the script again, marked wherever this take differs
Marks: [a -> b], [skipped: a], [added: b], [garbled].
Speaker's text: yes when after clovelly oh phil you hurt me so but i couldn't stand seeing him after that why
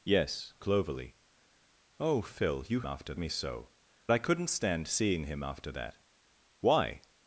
yes [skipped: when after] clovelly oh phil you [hurt -> after] me so [skipped: but] i couldn't stand seeing him after that why